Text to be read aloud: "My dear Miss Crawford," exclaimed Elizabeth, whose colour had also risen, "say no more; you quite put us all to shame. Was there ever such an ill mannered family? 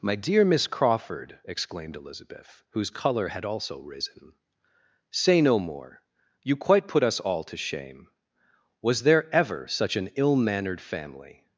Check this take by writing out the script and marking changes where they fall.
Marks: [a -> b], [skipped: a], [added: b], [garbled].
"My dear Miss Crawford," exclaimed Elizabeth, whose colour had also risen, "say no more; you quite put us all to shame. Was there ever such an ill mannered family?